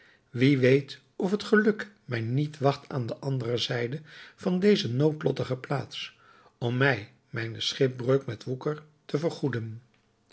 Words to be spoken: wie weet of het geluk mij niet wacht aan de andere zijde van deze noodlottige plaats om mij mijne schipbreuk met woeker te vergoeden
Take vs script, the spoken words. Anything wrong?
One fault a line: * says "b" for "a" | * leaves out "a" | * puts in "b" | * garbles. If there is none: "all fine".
all fine